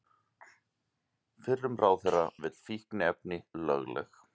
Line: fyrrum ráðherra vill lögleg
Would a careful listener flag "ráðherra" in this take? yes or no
no